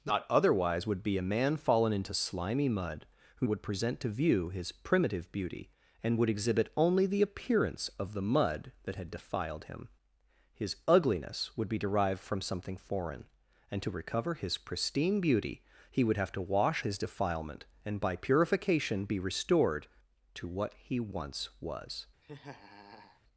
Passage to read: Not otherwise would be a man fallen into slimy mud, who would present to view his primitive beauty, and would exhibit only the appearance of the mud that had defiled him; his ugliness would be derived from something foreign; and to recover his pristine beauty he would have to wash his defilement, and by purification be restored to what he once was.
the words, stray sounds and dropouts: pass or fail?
fail